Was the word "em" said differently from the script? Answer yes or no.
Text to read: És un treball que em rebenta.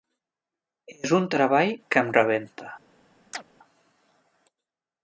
no